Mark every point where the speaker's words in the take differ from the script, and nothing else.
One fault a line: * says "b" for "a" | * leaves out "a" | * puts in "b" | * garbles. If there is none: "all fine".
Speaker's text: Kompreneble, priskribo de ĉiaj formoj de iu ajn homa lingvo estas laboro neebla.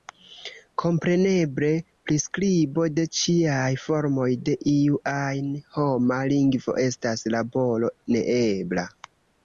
all fine